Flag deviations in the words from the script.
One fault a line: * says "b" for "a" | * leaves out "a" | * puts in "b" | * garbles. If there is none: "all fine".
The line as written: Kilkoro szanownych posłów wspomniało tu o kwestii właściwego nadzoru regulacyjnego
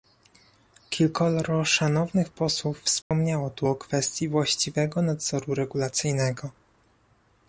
all fine